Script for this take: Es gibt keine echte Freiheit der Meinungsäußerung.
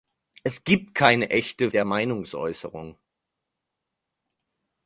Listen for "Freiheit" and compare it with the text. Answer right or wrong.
wrong